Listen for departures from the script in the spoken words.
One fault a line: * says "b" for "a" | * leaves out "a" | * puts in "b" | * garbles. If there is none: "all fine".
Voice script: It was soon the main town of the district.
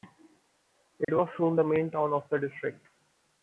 all fine